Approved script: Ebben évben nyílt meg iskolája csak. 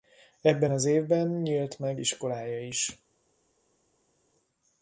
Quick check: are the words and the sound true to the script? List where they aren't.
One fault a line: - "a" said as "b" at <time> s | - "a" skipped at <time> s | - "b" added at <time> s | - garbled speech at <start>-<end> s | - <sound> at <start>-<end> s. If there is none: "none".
- "az" added at 0.7 s
- "csak" said as "is" at 2.6 s